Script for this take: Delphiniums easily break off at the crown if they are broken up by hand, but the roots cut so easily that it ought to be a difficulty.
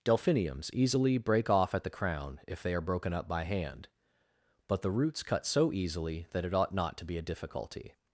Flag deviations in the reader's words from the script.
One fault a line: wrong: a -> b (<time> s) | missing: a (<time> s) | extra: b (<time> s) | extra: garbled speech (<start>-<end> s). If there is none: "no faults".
extra: not (6.7 s)